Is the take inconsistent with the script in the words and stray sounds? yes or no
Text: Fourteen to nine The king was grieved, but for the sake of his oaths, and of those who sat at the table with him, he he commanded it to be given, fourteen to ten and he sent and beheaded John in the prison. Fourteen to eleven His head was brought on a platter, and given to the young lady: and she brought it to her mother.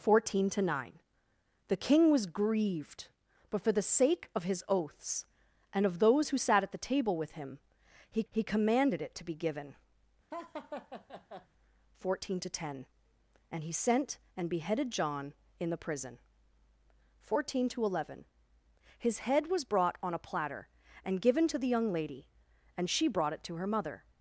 yes